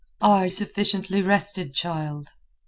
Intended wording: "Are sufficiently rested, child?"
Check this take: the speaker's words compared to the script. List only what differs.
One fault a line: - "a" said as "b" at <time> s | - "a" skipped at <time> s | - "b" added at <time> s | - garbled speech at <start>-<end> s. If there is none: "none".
none